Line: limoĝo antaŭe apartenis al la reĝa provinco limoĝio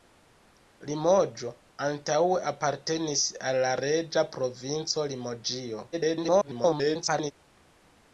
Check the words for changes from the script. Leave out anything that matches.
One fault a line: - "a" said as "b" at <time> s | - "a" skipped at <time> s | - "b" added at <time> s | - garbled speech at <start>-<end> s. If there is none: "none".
- garbled speech at 5.9-7.3 s